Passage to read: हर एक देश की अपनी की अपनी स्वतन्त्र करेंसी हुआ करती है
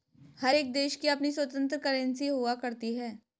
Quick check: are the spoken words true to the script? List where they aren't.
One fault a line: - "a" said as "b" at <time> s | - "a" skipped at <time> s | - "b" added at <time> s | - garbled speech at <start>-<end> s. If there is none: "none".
- "की अपनी" skipped at 1.3 s